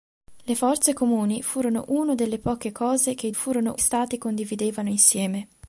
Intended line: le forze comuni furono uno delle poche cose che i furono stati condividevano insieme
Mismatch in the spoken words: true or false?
false